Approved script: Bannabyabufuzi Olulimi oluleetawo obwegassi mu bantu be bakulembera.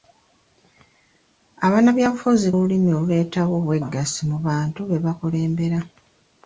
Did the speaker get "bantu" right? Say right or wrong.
right